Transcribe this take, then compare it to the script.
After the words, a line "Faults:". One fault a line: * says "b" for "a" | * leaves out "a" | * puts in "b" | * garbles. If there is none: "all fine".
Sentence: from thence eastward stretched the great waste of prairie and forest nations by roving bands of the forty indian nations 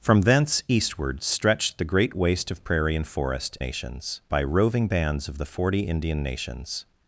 from thence eastward stretched the great waste of prairie and forest nations by roving bands of the forty indian nations
Faults:
all fine